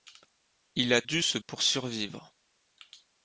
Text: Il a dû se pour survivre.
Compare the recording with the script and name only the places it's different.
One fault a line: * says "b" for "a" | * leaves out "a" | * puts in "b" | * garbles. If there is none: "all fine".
all fine